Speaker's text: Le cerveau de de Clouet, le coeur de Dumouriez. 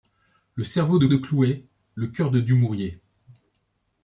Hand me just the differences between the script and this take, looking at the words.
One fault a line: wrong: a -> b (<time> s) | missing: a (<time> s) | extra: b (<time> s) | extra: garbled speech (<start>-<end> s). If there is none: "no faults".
no faults